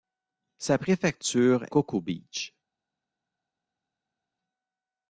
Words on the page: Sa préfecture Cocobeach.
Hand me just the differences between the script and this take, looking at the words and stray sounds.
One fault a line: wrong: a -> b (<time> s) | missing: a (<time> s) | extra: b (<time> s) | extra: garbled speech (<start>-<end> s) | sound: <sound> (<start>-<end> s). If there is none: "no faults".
no faults